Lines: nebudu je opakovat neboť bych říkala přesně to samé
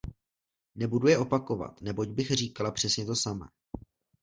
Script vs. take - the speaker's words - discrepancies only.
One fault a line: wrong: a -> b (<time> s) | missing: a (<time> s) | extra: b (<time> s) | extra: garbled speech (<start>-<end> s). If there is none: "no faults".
no faults